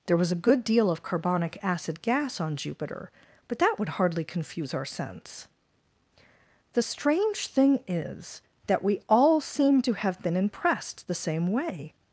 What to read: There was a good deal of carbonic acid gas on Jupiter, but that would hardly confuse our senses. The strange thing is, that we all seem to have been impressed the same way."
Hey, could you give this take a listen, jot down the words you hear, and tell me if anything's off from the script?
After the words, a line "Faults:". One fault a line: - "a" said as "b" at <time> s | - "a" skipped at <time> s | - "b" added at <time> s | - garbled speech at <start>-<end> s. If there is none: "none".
There was a good deal of carbonic acid gas on Jupiter, but that would hardly confuse our sense. The strange thing is, that we all seem to have been impressed the same way."
Faults:
- "senses" said as "sense" at 4.8 s